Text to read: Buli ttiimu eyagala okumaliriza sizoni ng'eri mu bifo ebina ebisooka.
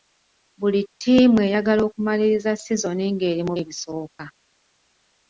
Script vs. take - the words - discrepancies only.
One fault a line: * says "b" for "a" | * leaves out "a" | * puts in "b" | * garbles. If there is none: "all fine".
* leaves out "bifo ebina"